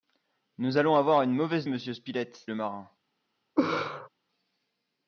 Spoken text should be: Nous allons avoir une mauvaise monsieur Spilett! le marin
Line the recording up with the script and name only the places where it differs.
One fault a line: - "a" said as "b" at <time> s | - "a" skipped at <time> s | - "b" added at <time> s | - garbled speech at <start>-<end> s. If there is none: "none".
none